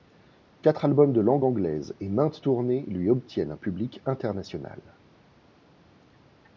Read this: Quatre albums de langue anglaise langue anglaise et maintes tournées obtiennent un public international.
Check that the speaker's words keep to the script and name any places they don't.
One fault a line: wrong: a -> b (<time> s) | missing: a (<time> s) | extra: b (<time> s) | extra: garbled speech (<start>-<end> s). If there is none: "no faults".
missing: langue anglaise (1.9 s)
extra: lui (2.9 s)